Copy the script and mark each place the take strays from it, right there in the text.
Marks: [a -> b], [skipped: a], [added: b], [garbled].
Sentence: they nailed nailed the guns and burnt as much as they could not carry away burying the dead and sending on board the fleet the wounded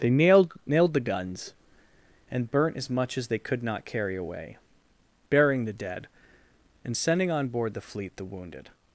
they nailed nailed the guns and burnt as much as they could not carry away burying the dead and sending on board the fleet the wounded